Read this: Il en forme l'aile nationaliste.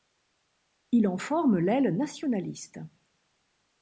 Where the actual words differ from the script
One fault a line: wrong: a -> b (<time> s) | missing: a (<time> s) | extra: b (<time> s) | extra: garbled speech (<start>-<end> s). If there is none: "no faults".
no faults